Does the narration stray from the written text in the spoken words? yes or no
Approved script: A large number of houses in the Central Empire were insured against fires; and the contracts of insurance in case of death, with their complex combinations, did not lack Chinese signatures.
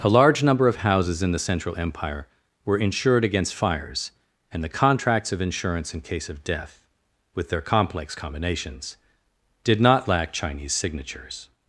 no